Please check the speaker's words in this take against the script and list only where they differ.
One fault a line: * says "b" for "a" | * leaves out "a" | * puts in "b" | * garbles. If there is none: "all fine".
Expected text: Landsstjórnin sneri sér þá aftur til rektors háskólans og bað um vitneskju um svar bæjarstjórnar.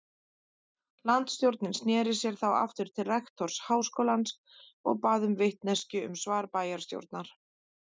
all fine